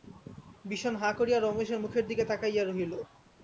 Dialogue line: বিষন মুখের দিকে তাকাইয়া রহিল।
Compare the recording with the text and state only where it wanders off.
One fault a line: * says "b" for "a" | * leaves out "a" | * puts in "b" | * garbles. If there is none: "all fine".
* puts in "হাঁ করিয়া রমেশের"